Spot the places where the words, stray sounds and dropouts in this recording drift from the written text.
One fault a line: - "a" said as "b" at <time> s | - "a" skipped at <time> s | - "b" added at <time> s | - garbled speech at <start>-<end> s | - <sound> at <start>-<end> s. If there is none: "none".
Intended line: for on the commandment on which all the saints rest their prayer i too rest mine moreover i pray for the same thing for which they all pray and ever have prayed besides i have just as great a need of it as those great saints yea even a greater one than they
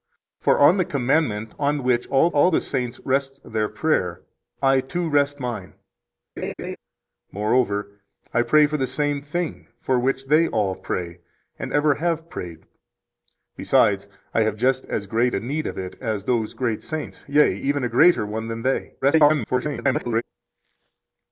- "all" added at 2.3 s
- laugh at 6.4-6.8 s
- garbled speech at 19.0-20.2 s